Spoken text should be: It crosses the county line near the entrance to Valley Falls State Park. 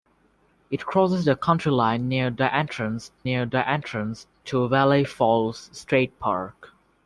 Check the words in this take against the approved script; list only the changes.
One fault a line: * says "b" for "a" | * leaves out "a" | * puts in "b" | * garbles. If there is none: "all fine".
* puts in "near the entrance"